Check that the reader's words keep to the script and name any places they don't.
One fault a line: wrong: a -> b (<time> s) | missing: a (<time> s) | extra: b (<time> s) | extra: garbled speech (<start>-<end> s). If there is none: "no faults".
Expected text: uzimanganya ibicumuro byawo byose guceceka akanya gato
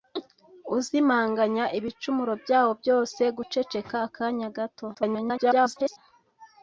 extra: garbled speech (4.9-6.0 s)